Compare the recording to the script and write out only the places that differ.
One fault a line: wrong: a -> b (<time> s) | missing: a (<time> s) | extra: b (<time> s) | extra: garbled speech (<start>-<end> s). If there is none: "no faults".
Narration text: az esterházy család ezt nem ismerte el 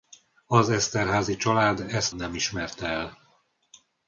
no faults